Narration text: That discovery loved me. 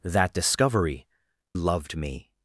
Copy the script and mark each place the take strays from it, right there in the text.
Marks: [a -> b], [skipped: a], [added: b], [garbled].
That discovery loved me.